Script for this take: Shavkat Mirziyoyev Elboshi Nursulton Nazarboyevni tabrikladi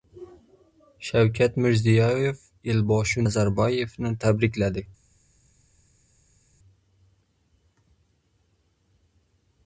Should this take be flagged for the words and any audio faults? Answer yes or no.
yes